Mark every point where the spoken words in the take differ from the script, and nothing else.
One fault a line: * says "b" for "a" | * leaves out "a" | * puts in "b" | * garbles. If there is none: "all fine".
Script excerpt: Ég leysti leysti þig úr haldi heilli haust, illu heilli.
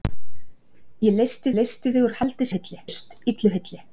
all fine